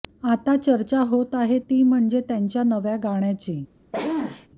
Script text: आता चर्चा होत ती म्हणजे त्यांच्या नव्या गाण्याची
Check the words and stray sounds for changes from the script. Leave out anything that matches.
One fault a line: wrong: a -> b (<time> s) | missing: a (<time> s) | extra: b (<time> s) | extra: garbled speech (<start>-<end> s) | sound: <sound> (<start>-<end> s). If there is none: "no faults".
extra: आहे (1.4 s)
sound: sneeze (3.9-4.5 s)